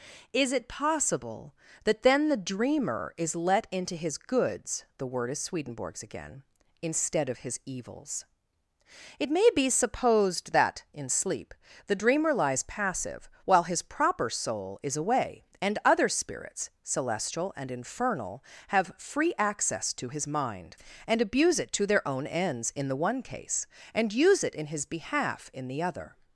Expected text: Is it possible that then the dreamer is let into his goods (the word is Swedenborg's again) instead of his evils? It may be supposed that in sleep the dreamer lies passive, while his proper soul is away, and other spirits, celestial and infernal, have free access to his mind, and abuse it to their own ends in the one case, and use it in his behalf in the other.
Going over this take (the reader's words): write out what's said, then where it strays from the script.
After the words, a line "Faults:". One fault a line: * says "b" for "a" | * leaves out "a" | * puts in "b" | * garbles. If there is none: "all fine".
Is it possible that then the dreamer is let into his goods (the word is Swedenborg's again) instead of his evils? It may be supposed that in sleep the dreamer lies passive, while his proper soul is away, and other spirits, celestial and infernal, have free access to his mind, and abuse it to their own ends in the one case, and use it in his behalf in the other.
Faults:
all fine